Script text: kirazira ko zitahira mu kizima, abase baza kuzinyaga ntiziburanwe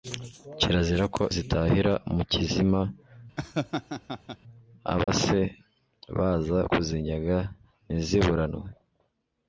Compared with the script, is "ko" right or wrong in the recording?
right